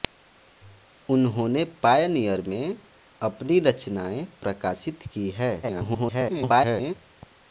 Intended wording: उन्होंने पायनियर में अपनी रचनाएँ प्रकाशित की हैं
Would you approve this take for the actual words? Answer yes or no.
no